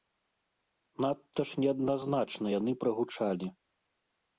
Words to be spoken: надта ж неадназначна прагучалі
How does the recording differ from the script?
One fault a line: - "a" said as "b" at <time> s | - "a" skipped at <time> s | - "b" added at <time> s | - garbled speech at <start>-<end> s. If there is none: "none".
- "яны" added at 2.6 s